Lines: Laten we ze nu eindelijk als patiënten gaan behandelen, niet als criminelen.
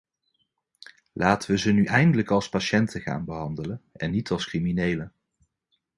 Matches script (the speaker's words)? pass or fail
fail